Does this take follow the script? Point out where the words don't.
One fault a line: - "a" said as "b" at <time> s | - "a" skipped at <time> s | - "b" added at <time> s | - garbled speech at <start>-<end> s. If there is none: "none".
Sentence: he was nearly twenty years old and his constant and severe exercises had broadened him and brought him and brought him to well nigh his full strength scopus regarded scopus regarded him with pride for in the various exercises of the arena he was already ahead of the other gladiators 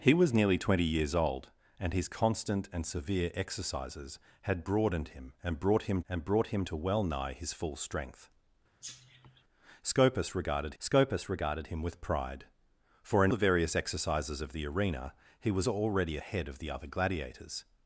none